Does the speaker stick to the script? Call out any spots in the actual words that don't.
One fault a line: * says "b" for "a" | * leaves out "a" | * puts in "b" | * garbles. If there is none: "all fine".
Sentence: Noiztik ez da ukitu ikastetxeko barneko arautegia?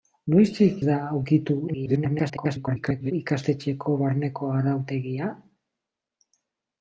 * leaves out "ez"
* garbles